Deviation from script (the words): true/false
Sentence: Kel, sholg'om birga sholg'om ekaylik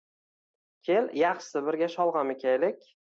true